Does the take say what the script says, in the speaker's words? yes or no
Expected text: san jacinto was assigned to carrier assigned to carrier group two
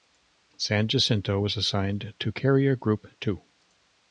no